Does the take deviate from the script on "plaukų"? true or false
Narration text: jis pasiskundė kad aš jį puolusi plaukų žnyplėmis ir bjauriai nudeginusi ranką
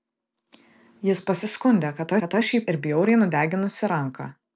true